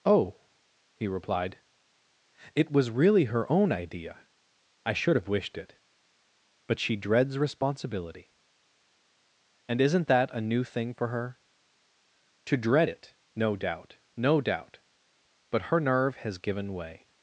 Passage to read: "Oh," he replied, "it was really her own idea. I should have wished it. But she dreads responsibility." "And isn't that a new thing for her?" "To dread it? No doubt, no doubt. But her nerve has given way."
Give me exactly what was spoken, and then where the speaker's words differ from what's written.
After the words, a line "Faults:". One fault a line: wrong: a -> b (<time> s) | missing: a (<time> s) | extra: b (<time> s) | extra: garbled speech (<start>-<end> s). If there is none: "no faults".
"Oh," he replied, "it was really her own idea. I should have wished it. But she dreads responsibility." "And isn't that a new thing for her?" "To dread it? No doubt, no doubt. But her nerve has given way."
Faults:
no faults